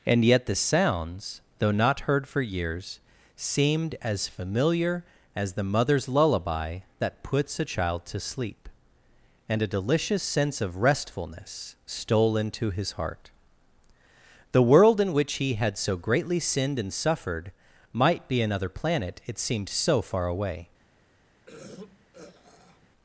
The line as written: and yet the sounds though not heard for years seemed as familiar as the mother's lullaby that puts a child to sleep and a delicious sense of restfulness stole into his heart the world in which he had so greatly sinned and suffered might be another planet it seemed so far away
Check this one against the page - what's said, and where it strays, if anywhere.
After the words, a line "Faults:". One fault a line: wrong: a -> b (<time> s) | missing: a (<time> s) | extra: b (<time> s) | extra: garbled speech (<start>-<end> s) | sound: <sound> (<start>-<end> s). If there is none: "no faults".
and yet the sounds though not heard for years seemed as familiar as the mother's lullaby that puts a child to sleep and a delicious sense of restfulness stole into his heart the world in which he had so greatly sinned and suffered might be another planet it seemed so far away
Faults:
sound: throat clearing (21.5-22.9 s)